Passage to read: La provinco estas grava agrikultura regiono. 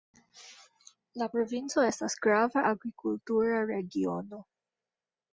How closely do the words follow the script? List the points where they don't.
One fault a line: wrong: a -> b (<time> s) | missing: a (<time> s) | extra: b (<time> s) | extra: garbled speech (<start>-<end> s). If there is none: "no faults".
no faults